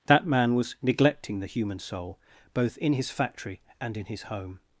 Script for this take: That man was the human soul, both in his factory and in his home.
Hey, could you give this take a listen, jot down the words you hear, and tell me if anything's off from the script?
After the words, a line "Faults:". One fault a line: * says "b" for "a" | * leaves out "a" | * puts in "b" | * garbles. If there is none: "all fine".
That man was neglecting the human soul, both in his factory and in his home.
Faults:
* puts in "neglecting"